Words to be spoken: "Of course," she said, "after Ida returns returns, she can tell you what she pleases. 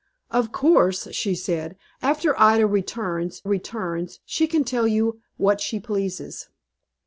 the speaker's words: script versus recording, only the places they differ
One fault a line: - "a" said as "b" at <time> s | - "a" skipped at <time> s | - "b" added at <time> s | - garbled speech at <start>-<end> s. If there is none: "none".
none